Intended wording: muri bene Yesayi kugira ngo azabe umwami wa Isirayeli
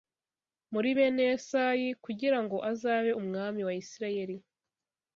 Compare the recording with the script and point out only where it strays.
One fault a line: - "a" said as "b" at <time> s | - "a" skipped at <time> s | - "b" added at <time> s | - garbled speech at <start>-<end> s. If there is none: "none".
none